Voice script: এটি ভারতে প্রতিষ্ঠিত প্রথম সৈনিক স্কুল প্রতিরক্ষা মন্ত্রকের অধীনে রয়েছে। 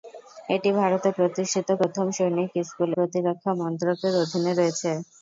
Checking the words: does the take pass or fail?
pass